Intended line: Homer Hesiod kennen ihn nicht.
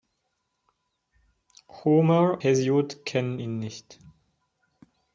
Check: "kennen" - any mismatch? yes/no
no